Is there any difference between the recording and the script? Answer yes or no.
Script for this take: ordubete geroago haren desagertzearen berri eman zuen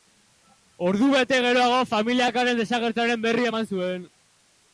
yes